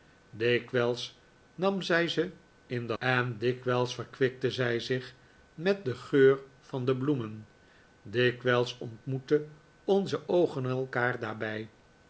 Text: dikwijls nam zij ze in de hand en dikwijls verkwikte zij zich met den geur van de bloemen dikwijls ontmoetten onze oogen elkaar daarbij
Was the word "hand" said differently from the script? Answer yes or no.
yes